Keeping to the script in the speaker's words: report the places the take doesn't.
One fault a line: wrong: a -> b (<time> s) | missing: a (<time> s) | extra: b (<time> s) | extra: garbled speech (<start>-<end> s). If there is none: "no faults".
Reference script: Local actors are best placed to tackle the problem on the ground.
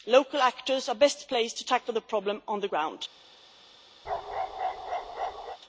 no faults